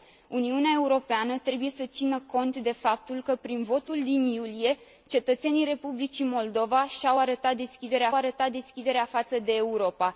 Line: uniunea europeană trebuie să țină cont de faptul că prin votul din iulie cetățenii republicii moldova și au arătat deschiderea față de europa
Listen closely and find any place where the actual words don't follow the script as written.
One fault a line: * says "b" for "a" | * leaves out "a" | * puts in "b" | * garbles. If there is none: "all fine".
* puts in "arătat deschiderea"